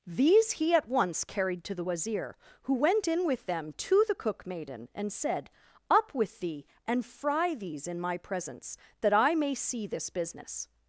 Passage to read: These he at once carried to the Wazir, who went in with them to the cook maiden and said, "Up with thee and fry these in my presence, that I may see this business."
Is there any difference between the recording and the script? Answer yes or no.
no